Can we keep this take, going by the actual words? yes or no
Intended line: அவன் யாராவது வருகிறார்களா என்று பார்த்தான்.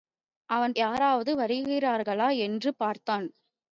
yes